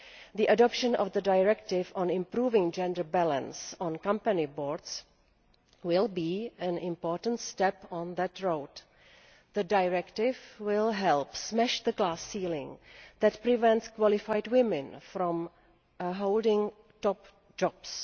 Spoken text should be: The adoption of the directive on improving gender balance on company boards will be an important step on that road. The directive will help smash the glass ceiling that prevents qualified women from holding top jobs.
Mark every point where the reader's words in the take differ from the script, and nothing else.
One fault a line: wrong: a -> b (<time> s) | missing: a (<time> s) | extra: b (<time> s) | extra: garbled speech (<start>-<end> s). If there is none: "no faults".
no faults